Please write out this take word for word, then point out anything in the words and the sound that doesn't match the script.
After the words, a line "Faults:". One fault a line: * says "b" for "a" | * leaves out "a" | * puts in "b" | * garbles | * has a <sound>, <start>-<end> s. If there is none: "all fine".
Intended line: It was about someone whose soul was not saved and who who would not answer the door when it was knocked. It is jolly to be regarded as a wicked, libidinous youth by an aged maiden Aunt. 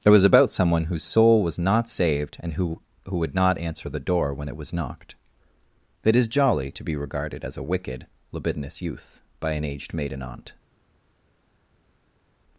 It was about someone whose soul was not saved and who who would not answer the door when it was knocked. It is jolly to be regarded as a wicked, libidinous youth by an aged maiden Aunt.
Faults:
all fine